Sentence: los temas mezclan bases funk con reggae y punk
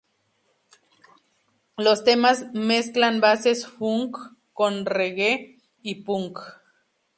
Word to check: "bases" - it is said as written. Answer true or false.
true